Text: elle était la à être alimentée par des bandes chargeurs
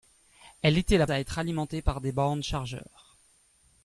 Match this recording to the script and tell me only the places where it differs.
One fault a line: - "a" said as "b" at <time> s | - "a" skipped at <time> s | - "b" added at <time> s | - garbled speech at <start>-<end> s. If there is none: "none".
none